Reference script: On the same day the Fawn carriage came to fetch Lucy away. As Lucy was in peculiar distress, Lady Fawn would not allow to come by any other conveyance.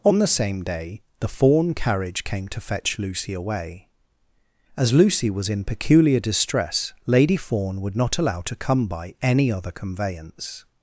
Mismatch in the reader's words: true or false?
false